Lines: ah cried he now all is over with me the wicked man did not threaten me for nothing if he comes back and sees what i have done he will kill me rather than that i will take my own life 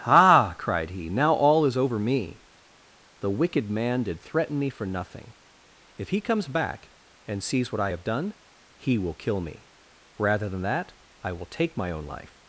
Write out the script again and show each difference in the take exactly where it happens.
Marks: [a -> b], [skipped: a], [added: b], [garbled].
ah cried he now all is over [skipped: with] me the wicked man did [skipped: not] threaten me for nothing if he comes back and sees what i have done he will kill me rather than that i will take my own life